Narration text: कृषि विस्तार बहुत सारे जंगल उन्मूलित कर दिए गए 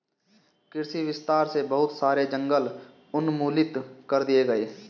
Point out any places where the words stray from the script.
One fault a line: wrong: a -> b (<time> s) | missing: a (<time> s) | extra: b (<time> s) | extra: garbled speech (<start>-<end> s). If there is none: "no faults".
extra: से (1.5 s)